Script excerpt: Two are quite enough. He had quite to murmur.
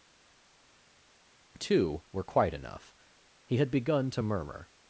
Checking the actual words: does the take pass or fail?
fail